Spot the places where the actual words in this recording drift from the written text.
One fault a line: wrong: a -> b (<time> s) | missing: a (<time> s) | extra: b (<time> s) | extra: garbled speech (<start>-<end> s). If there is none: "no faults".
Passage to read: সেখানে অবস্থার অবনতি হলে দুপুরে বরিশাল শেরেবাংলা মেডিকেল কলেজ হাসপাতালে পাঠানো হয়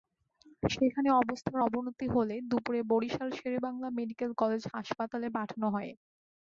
no faults